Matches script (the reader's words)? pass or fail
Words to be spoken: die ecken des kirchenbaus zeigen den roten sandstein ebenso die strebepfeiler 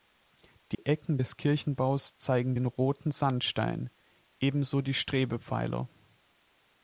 pass